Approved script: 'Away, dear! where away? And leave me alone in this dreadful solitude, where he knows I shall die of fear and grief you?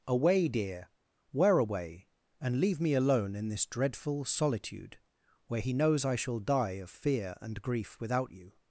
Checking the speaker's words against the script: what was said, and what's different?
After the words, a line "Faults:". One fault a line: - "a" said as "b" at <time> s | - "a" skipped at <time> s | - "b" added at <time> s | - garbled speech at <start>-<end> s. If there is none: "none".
'Away, dear! where away? And leave me alone in this dreadful solitude, where he knows I shall die of fear and grief without you?
Faults:
- "without" added at 8.0 s